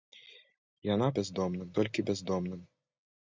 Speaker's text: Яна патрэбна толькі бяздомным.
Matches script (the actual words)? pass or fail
fail